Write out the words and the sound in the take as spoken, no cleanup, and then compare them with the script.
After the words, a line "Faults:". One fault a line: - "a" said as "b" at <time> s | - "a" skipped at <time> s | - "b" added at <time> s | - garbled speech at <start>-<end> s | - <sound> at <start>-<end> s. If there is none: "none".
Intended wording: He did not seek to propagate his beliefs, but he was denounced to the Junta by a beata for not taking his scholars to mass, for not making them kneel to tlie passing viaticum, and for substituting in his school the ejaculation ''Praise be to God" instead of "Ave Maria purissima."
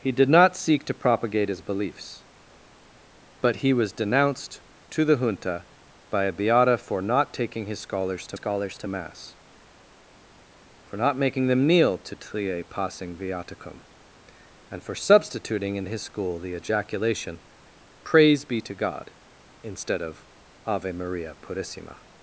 He did not seek to propagate his beliefs, but he was denounced to the Junta by a beata for not taking his scholars to scholars to mass, for not making them kneel to tlie passing viaticum, and for substituting in his school the ejaculation ''Praise be to God" instead of "Ave Maria purissima."
Faults:
- "scholars to" added at 8.3 s